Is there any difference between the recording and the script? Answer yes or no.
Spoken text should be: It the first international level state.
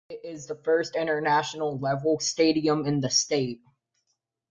yes